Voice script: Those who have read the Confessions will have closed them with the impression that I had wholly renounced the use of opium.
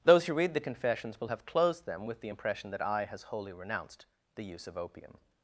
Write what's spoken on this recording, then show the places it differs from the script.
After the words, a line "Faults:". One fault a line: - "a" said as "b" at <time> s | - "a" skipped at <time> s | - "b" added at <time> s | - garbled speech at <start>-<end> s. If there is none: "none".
Those who read the Confessions will have closed them with the impression that I has wholly renounced the use of opium.
Faults:
- "have" skipped at 0.3 s
- "had" said as "has" at 3.0 s